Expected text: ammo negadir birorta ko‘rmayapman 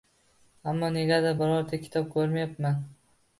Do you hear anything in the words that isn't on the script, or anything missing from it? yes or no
yes